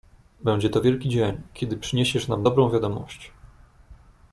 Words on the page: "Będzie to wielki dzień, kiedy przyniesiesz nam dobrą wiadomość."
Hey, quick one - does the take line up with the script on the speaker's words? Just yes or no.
yes